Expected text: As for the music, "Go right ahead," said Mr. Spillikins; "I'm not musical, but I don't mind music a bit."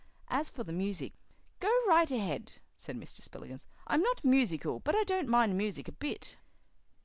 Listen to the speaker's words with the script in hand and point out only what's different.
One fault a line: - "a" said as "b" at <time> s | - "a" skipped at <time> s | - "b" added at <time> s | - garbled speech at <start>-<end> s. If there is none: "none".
none